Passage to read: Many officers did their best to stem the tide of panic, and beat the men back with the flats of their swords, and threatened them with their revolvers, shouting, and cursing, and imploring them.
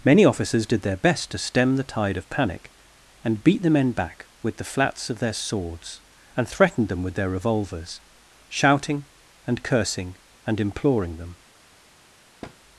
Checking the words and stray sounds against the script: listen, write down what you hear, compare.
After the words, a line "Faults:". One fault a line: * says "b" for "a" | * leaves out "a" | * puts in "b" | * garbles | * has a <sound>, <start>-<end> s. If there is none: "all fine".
Many officers did their best to stem the tide of panic, and beat the men back with the flats of their swords, and threatened them with their revolvers, shouting, and cursing, and imploring them.
Faults:
* has a thud, 12.4-12.6 s